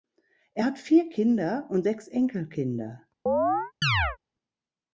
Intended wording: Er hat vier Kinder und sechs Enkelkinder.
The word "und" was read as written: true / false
true